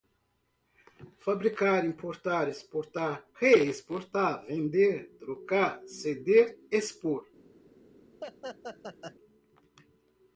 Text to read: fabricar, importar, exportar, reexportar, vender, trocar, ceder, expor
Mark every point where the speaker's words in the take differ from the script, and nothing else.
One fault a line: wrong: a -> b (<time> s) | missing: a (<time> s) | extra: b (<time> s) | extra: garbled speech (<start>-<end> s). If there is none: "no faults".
no faults